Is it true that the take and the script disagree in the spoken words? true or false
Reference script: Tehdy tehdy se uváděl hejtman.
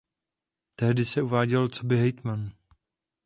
true